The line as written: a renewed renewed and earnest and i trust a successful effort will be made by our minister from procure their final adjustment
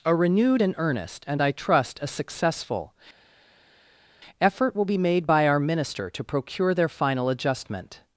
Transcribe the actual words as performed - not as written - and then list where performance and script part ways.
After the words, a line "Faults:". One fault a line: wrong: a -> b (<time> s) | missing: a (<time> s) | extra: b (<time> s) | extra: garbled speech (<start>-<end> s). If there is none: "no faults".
a renewed and earnest and i trust a successful effort will be made by our minister to procure their final adjustment
Faults:
missing: renewed (0.6 s)
wrong: from -> to (6.1 s)